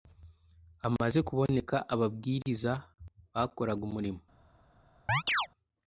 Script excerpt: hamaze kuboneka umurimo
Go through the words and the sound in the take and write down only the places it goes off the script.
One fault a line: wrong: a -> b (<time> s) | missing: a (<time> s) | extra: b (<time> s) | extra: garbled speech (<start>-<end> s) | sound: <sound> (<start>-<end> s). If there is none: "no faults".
extra: ababwiriza bakoraga (1.9 s)
sound: chirp (5.1-5.5 s)